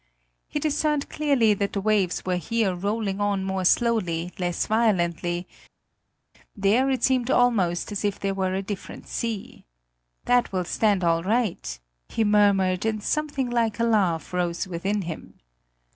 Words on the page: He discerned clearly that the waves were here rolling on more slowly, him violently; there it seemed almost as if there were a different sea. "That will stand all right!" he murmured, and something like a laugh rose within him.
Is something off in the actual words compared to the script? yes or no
yes